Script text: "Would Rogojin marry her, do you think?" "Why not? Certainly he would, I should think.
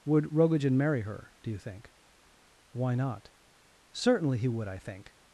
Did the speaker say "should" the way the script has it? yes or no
no